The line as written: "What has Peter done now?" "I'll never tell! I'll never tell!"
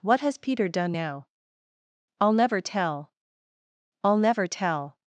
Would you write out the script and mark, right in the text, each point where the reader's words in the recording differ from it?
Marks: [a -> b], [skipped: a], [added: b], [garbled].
"What has Peter done now?" "I'll never tell! I'll never tell!"